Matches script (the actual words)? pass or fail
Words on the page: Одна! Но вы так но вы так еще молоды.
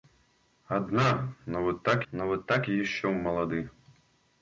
pass